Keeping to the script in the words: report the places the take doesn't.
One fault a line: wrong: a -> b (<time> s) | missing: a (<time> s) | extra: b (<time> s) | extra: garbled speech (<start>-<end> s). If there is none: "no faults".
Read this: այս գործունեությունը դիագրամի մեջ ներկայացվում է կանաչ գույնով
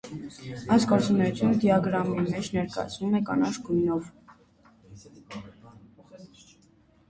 no faults